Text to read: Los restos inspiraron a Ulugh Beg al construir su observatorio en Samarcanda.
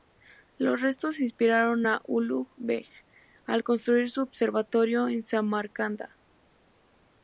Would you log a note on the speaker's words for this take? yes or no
no